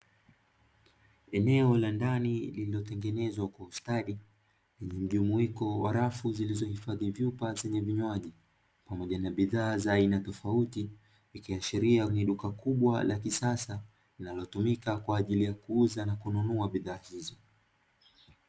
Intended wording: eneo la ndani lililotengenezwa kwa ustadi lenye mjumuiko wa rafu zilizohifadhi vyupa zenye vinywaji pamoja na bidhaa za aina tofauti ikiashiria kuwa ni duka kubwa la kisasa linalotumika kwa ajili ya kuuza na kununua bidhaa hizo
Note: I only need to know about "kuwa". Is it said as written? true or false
false